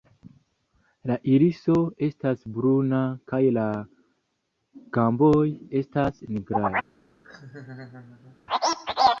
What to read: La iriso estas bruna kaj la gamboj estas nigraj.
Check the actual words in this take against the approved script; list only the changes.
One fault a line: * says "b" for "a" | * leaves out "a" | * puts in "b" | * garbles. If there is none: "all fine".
all fine